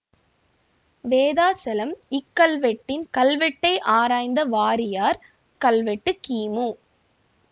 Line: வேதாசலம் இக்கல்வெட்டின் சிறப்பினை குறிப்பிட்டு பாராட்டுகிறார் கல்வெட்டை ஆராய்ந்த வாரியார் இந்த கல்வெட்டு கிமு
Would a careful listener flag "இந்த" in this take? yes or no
yes